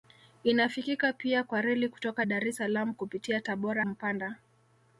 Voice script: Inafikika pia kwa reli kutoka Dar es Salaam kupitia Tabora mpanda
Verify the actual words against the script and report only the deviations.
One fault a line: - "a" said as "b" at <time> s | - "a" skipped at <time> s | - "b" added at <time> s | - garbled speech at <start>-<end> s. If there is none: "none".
none